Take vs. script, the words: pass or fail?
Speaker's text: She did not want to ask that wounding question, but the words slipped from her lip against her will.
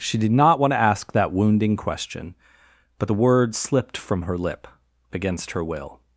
pass